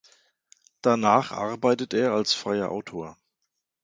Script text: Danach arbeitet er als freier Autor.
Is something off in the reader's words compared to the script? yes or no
no